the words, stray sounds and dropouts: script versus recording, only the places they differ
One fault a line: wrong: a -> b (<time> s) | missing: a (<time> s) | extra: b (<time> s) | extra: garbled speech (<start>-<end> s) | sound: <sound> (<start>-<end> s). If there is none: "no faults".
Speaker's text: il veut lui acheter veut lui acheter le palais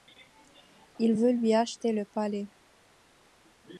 missing: veut lui acheter (1.9 s)